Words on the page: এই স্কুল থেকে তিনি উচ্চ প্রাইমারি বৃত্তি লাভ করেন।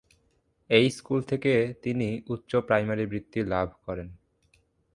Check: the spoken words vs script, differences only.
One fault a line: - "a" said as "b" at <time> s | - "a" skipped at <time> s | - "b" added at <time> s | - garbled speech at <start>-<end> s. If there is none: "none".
none